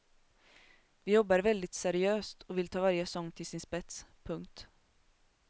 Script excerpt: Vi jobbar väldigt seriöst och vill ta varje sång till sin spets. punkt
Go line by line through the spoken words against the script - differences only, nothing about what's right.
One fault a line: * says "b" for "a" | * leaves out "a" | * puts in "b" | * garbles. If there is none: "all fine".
all fine